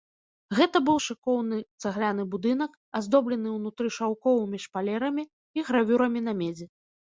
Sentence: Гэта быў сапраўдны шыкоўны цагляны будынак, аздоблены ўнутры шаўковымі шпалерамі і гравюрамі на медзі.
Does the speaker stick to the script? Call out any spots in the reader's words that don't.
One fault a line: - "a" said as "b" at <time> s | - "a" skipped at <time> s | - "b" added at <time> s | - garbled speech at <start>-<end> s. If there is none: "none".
- "сапраўдны" skipped at 0.9 s